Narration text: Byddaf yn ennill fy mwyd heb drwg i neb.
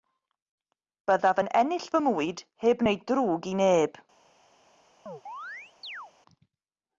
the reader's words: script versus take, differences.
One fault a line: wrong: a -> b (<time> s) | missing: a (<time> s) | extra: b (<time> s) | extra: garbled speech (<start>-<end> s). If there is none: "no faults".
extra: wneud (2.9 s)